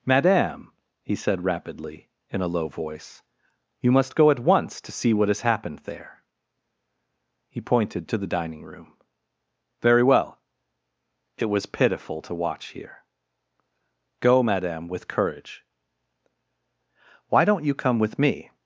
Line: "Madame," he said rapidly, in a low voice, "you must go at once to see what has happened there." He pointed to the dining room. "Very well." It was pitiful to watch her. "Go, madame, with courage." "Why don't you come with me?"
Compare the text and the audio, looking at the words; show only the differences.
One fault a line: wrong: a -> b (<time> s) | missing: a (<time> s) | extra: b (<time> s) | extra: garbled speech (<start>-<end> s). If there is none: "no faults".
wrong: her -> here (12.7 s)